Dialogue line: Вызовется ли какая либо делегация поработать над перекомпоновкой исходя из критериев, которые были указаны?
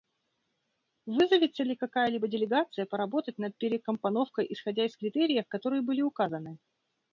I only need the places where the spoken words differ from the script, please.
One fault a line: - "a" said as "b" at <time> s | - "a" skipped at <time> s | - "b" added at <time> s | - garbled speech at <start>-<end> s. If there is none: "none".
none